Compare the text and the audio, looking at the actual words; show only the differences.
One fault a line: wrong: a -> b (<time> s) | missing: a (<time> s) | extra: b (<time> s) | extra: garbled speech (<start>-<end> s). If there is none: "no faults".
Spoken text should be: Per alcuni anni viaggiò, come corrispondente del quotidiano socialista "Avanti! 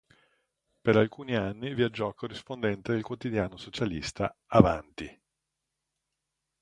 missing: come (2.1 s)